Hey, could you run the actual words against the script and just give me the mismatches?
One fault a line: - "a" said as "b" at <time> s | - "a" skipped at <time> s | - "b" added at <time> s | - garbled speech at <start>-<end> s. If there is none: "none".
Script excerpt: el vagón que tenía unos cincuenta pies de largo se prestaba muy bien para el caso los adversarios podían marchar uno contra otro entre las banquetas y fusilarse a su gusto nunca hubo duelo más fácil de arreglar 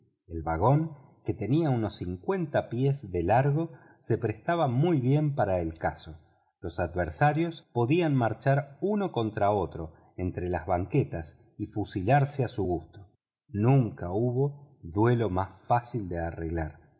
none